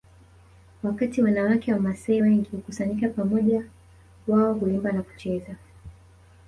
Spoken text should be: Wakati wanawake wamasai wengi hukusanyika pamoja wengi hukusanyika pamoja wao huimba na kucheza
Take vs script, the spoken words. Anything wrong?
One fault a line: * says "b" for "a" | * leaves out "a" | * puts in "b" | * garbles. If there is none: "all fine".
* leaves out "wengi hukusanyika pamoja"